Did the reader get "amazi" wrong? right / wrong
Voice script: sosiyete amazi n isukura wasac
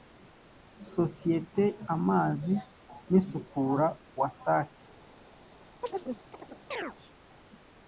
right